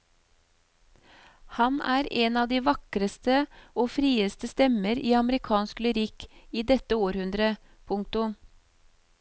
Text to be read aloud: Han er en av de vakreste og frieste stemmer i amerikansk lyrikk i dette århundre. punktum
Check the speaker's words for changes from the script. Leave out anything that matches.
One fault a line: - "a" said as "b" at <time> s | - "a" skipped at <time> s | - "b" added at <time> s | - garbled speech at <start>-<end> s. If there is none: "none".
none